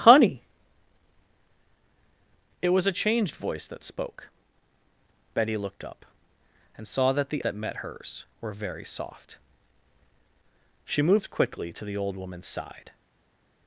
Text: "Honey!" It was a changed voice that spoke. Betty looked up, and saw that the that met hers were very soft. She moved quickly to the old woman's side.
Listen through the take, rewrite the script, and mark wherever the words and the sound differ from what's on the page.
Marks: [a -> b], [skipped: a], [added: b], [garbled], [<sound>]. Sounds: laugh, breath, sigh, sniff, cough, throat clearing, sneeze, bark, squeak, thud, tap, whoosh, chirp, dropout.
"Honey!" It was a changed voice that spoke. Betty looked up, and saw that the that met hers were very soft. She moved quickly to the old woman's side.